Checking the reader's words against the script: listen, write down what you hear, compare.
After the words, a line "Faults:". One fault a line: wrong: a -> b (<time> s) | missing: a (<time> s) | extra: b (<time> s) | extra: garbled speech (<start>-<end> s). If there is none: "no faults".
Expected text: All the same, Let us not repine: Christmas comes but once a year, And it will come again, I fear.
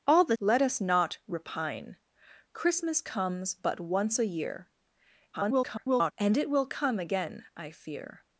All the Let us not repine: Christmas comes but once a year, [garbled] And it will come again, I fear.
Faults:
missing: same (0.4 s)
extra: garbled speech (5.3-6.1 s)